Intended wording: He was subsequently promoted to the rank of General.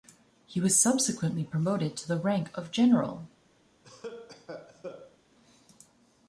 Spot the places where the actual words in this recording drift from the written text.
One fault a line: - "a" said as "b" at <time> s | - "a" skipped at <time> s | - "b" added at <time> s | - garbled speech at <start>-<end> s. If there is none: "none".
none